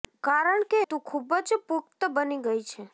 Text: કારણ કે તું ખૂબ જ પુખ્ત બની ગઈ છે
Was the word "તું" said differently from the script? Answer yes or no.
no